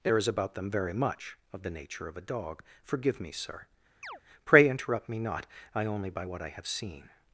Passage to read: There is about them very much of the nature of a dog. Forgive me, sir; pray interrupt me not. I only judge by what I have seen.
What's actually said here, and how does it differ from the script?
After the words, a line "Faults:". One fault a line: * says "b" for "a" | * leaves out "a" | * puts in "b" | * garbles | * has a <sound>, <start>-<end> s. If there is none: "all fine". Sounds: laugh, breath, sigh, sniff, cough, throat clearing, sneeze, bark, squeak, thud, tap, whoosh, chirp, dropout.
There is about them very much of the nature of a dog. Forgive me, sir; pray interrupt me not. I only by what I have seen.
Faults:
* has a chirp, 4.0-4.2 s
* leaves out "judge"